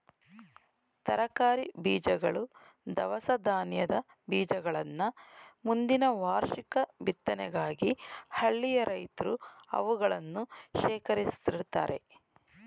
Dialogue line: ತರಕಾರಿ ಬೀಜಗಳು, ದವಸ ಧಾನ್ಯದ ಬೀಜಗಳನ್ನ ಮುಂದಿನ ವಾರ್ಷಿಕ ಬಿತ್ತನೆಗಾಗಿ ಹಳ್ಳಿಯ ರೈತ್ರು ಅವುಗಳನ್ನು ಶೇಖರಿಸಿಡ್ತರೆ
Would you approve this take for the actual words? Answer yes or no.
yes